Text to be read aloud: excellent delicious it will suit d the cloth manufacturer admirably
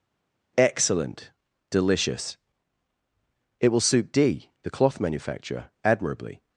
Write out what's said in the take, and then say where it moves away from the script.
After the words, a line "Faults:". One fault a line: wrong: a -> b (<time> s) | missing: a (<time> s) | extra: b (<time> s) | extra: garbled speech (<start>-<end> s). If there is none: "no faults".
excellent delicious it will suit d the cloth manufacturer admirably
Faults:
no faults